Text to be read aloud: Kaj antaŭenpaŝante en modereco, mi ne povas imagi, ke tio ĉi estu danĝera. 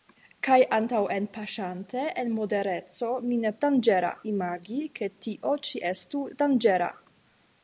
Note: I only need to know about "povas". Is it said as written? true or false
false